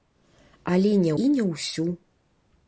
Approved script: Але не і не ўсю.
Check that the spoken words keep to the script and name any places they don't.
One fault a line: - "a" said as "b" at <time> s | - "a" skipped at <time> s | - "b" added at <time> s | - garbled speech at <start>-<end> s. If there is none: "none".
none